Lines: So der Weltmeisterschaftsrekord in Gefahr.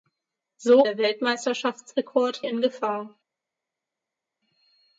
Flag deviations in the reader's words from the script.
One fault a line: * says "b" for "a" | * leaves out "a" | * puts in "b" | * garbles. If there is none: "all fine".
all fine